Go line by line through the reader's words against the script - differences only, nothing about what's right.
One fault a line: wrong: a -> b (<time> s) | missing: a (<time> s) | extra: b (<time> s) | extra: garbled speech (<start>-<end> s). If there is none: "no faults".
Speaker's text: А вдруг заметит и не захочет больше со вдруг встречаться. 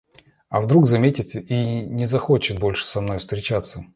wrong: вдруг -> мной (3.0 s)